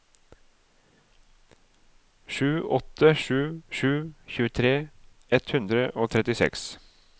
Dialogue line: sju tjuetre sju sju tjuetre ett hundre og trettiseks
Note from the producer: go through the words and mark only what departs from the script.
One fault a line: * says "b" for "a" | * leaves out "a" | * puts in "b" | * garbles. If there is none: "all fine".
* says "åtte" for "tjuetre"